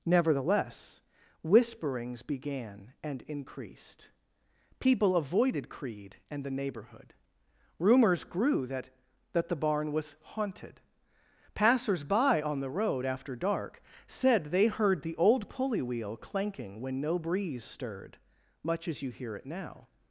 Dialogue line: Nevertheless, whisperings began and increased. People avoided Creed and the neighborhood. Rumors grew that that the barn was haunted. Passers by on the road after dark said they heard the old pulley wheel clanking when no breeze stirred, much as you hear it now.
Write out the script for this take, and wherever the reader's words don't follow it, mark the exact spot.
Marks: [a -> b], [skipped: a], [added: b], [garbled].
Nevertheless, whisperings began and increased. People avoided Creed and the neighborhood. Rumors grew that that the barn was haunted. Passers by on the road after dark said they heard the old pulley wheel clanking when no breeze stirred, much as you hear it now.